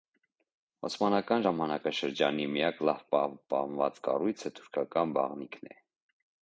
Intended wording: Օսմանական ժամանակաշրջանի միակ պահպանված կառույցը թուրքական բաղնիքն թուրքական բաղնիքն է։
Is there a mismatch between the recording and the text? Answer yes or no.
yes